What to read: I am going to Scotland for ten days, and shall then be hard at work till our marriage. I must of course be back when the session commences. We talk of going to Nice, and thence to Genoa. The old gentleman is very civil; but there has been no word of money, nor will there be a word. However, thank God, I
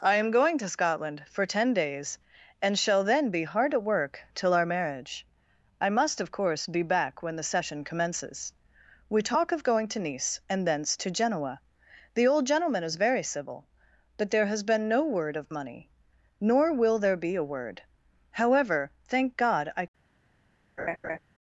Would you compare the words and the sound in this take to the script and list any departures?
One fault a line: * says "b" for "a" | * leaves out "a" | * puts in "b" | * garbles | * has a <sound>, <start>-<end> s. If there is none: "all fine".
* has a laugh, 20.8-21.2 s